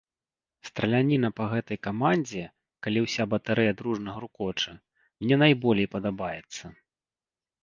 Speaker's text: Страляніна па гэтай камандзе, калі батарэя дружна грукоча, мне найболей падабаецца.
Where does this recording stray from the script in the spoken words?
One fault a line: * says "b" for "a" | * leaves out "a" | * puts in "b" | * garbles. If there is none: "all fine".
* puts in "ўся"